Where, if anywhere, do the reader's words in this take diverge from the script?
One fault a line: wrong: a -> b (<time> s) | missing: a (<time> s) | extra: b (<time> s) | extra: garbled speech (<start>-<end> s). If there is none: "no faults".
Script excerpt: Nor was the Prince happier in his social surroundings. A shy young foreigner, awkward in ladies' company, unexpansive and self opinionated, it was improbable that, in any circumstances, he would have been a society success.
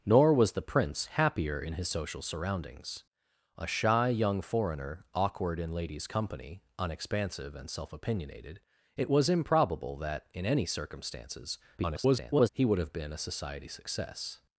extra: garbled speech (11.8-12.5 s)